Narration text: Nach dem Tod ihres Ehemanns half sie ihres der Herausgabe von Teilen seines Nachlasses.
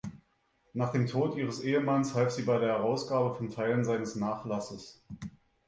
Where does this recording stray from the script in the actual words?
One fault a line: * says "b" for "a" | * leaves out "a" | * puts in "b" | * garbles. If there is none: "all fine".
* says "bei" for "ihres"